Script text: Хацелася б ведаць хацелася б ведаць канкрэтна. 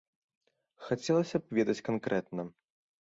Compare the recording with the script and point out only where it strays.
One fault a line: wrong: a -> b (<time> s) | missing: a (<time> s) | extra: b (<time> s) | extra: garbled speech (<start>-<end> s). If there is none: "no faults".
missing: хацелася б ведаць (1.8 s)